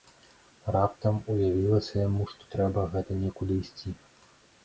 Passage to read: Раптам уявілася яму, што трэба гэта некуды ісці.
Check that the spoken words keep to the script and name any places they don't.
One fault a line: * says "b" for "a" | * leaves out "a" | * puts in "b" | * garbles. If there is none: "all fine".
all fine